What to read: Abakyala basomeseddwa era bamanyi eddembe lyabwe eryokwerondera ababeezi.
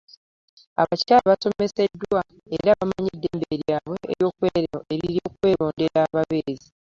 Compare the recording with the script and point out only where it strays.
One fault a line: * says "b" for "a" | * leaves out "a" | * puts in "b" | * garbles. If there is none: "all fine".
all fine